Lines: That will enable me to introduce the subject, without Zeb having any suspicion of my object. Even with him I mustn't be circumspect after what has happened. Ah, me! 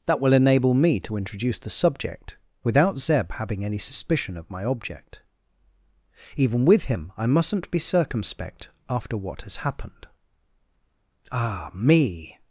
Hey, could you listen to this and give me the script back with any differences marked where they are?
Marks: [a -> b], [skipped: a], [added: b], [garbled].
That will enable me to introduce the subject, without Zeb having any suspicion of my object. Even with him I mustn't be circumspect after what has happened. Ah, me!